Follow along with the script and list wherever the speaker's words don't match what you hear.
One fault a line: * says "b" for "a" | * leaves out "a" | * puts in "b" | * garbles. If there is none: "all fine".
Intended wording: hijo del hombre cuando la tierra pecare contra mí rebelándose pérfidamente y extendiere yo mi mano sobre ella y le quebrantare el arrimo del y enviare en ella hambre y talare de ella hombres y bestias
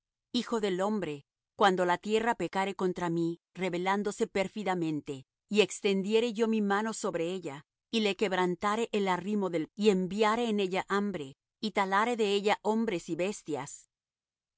all fine